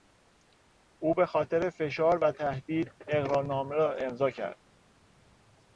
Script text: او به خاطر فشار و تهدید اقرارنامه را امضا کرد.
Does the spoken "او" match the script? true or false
true